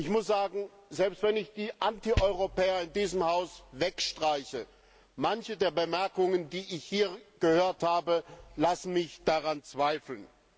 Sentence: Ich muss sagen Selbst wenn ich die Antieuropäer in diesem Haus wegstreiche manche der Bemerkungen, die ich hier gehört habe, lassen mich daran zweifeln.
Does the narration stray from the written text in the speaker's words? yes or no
no